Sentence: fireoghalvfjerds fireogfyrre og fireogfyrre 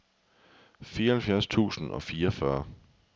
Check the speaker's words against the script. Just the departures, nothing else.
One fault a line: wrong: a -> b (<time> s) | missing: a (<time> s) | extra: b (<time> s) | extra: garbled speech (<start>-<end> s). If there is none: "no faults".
wrong: fireogfyrre -> tusind (1.5 s)